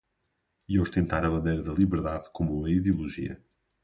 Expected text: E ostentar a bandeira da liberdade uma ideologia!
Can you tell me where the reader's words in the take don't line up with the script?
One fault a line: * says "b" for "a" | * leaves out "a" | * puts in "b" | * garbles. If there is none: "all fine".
* puts in "como"